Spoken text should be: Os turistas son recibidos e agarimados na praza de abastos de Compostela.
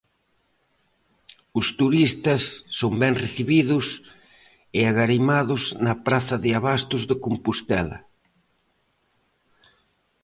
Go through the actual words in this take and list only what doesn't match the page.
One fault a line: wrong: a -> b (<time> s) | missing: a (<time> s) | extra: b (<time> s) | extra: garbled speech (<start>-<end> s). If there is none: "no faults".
extra: ben (3.0 s)